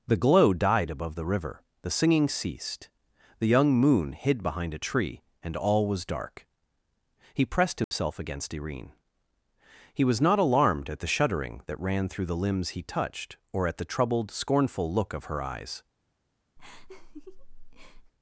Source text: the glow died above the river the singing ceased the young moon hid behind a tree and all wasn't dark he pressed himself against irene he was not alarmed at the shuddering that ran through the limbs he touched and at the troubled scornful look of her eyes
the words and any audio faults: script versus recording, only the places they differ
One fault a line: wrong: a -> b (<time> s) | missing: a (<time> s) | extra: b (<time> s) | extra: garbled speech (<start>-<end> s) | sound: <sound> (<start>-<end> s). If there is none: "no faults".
wrong: wasn't -> was (5.9 s)
sound: dropout (7.8-7.9 s)
wrong: and -> or (13.5 s)
sound: laugh (16.6-18.1 s)